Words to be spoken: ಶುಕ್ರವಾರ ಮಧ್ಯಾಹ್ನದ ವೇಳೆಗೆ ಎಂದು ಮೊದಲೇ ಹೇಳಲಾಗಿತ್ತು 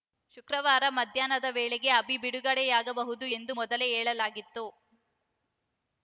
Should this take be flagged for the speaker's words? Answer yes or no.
yes